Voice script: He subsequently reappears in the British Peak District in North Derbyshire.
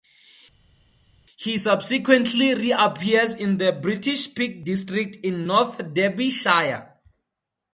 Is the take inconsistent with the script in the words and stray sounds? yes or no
no